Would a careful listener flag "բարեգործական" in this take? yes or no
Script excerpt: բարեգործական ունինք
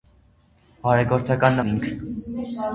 no